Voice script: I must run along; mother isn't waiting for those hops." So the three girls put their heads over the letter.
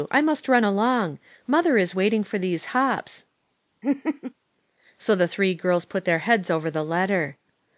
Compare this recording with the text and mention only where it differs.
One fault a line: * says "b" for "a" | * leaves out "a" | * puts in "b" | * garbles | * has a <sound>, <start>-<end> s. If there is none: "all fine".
* says "is" for "isn't"
* says "these" for "those"
* has a laugh, 3.8-4.3 s